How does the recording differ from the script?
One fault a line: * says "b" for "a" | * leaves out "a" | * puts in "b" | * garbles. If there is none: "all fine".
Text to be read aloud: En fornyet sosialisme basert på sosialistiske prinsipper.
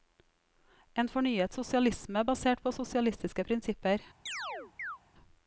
all fine